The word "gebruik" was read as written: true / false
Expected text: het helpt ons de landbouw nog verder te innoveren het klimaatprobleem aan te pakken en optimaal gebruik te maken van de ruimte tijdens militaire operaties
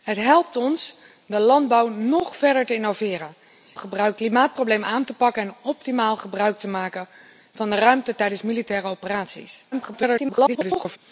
true